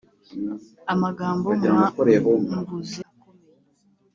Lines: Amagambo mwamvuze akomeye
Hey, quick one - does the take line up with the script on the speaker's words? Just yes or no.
yes